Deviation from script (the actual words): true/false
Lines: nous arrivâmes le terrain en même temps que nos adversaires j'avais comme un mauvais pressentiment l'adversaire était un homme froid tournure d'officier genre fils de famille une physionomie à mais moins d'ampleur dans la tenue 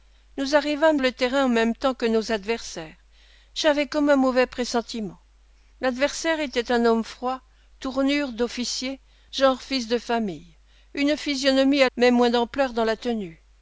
false